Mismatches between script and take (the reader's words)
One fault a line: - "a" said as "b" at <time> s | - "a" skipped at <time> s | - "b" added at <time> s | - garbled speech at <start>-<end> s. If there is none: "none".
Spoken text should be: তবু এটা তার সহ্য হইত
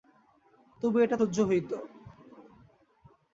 - "তার" skipped at 1.2 s